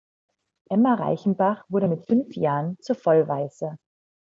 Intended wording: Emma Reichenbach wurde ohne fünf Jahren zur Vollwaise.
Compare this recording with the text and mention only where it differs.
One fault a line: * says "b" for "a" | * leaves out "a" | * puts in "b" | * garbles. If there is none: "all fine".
* says "mit" for "ohne"